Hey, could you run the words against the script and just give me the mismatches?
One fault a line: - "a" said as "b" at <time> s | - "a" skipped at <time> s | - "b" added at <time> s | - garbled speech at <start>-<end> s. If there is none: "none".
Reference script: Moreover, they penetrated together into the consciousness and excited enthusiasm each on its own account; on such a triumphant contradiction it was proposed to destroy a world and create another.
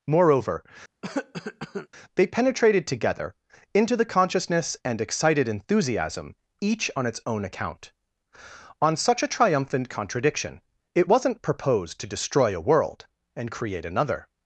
- "was" said as "wasn't" at 11.1 s